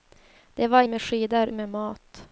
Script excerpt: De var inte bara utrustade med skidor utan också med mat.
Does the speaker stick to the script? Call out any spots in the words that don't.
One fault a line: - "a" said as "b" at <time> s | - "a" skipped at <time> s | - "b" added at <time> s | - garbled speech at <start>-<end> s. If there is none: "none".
- "inte bara utrustade" skipped at 0.8 s
- "utan också" skipped at 1.5 s